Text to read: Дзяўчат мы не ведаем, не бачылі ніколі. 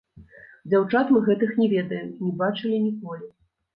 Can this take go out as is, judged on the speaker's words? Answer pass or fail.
fail